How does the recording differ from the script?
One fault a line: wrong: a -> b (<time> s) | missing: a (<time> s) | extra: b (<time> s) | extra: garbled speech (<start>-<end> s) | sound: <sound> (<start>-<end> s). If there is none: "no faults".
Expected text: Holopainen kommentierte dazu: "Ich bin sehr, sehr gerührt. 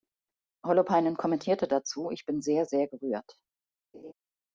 sound: laugh (3.9-4.1 s)